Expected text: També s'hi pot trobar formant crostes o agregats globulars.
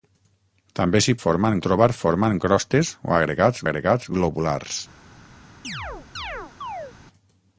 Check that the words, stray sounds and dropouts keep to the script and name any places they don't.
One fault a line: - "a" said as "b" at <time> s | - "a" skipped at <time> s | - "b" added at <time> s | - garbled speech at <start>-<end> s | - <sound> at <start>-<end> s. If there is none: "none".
- "pot" said as "formant" at 1.2 s
- "agregats" added at 3.7 s
- chirp at 5.6-7.0 s